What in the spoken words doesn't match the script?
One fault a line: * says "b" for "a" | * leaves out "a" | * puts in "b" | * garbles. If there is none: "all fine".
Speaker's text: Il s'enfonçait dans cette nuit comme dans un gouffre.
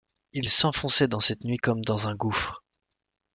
all fine